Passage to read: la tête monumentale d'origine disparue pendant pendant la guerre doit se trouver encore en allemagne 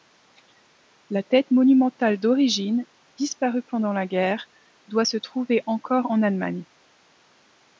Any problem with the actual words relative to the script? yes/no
yes